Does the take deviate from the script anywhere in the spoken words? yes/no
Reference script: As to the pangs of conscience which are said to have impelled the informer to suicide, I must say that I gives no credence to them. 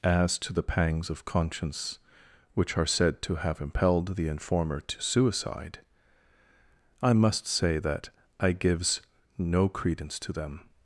no